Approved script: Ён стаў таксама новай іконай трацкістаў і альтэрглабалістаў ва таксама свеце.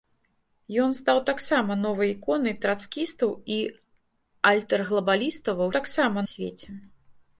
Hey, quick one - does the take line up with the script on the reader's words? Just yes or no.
yes